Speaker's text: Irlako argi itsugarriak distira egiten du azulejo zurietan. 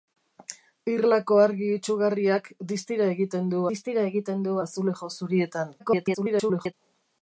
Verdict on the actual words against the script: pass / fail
fail